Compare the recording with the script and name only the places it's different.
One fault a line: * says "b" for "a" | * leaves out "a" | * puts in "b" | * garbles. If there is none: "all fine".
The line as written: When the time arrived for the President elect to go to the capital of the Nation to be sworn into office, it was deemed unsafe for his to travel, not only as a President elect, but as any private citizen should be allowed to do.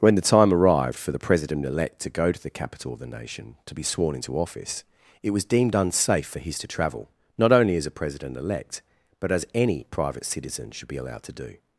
all fine